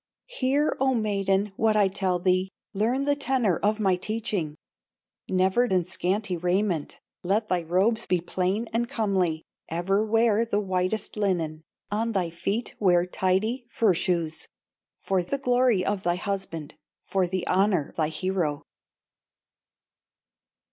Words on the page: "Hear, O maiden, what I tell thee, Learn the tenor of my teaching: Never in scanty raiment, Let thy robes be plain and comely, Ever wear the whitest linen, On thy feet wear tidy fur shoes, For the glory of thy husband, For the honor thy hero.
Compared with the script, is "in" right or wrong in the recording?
right